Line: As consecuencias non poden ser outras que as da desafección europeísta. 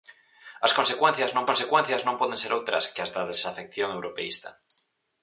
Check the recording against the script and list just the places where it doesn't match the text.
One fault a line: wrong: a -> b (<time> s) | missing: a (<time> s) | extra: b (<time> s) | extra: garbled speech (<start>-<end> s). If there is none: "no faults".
extra: consecuencias non (1.5 s)